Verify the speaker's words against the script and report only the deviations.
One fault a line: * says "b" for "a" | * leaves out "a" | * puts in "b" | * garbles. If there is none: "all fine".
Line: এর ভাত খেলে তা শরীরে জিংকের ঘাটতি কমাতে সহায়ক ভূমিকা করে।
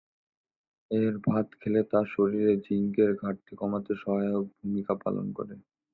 * puts in "পালন"